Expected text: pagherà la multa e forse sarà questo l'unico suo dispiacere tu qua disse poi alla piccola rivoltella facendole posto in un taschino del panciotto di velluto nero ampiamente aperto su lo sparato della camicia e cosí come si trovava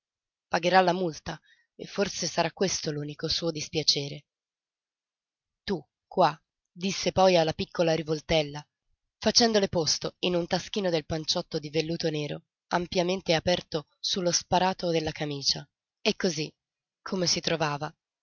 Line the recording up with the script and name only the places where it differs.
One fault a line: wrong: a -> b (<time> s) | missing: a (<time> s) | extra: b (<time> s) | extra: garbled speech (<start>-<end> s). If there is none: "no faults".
no faults